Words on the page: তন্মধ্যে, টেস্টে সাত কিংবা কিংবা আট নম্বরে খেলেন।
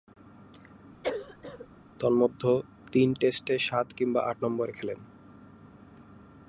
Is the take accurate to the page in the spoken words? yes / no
no